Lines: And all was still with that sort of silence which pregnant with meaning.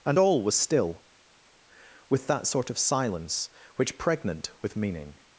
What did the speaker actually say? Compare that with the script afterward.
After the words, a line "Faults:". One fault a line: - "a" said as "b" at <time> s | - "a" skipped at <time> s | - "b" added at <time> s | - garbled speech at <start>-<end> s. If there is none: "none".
And all was still with that sort of silence which pregnant with meaning.
Faults:
none